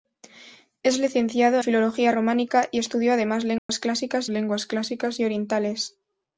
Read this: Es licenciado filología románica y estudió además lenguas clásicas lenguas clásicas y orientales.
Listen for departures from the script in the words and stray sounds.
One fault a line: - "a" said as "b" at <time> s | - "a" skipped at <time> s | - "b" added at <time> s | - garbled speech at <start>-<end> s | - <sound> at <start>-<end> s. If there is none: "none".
- dropout at 3.6-3.7 s